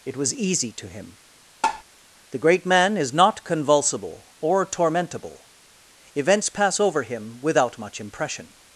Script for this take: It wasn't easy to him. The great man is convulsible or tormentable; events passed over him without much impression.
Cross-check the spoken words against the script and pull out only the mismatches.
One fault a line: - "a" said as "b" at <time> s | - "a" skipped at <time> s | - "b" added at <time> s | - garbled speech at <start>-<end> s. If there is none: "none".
- "wasn't" said as "was" at 0.2 s
- "not" added at 3.1 s
- "passed" said as "pass" at 6.5 s